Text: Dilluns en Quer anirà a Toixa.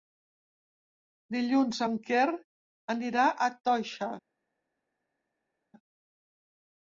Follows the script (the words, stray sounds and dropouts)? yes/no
yes